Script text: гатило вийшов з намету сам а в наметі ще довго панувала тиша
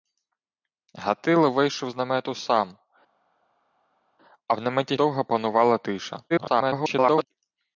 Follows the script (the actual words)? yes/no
no